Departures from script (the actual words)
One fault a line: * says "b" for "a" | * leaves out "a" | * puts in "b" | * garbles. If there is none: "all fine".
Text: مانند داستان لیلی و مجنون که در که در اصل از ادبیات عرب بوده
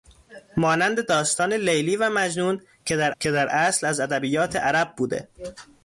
all fine